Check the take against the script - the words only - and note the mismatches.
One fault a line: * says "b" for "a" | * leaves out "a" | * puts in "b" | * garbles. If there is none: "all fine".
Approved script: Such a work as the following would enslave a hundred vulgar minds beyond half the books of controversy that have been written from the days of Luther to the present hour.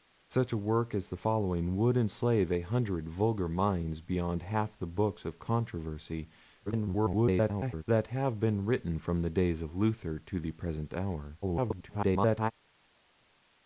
* garbles
* garbles